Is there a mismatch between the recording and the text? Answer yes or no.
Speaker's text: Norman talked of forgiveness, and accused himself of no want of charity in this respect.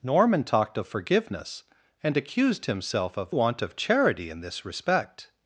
yes